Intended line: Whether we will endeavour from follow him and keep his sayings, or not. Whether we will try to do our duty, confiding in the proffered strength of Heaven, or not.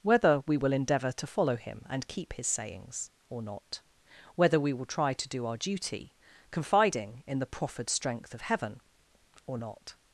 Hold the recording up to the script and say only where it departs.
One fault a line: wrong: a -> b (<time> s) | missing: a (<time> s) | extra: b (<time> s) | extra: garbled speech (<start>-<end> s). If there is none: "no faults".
wrong: from -> to (1.1 s)